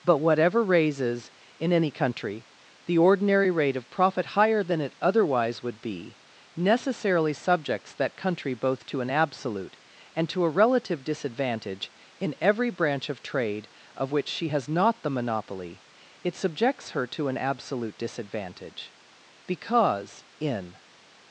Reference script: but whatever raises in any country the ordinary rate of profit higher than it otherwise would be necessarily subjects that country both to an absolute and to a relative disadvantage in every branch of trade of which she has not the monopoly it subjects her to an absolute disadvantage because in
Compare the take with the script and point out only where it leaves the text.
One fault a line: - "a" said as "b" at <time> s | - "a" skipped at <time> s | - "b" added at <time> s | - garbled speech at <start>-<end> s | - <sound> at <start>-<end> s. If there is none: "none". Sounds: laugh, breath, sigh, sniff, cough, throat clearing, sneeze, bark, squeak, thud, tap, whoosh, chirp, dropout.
none